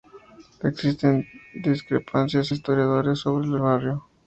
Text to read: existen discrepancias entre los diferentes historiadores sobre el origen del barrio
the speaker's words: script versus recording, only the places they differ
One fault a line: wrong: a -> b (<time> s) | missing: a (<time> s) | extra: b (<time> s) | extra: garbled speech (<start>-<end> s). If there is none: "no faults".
missing: entre los diferentes (2.5 s)
missing: origen del (3.6 s)